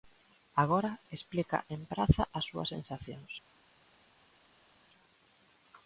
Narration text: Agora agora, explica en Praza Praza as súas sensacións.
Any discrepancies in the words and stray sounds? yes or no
yes